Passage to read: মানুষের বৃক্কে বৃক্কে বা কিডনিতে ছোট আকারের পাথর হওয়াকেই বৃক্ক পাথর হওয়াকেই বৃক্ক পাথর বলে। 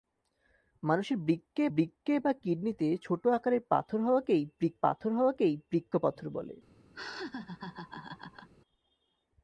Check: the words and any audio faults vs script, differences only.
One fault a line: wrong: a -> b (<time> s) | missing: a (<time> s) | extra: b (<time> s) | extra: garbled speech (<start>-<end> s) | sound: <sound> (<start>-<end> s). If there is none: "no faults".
sound: laugh (6.9-8.5 s)